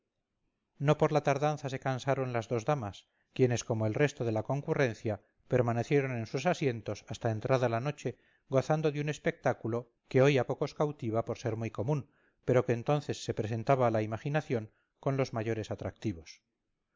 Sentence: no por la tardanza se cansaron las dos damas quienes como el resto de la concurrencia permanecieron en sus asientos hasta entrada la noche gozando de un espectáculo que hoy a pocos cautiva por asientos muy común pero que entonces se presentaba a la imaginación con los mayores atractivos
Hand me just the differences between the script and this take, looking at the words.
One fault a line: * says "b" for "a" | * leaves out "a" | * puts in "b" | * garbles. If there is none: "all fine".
* says "ser" for "asientos"